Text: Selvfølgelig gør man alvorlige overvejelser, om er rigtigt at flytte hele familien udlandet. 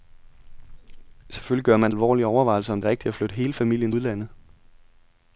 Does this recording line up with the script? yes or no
yes